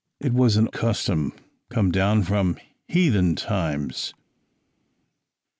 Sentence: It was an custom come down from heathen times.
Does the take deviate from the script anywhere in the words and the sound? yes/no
no